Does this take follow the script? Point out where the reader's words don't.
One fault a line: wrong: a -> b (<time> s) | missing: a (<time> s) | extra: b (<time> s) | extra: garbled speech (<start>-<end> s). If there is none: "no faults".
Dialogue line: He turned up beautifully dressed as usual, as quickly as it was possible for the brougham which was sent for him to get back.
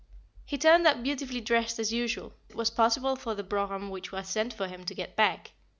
missing: as quickly as (2.3 s)